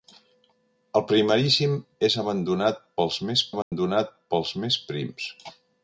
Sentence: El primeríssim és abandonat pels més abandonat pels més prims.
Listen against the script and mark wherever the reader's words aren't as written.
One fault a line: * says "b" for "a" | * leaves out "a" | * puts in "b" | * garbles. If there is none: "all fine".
all fine